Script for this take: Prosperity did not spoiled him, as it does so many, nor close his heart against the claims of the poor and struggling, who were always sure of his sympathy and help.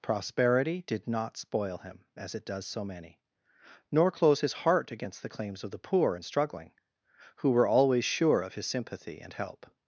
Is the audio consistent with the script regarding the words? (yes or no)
no